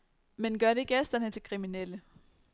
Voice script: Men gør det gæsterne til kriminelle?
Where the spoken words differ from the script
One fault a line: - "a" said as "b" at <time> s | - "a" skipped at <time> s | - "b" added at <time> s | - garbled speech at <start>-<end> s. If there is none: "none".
none